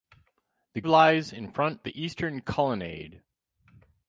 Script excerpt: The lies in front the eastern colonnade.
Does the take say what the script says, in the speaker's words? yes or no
yes